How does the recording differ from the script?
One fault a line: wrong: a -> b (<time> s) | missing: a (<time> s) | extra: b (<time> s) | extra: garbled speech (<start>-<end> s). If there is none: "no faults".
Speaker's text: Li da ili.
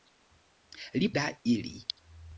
no faults